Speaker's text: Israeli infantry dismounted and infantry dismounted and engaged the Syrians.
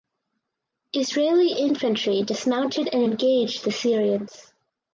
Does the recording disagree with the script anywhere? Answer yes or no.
yes